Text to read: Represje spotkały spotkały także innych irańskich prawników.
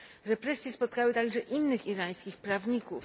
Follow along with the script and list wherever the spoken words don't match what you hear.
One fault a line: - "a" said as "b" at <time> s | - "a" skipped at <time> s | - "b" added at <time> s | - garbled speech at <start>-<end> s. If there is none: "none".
- "spotkały" skipped at 1.1 s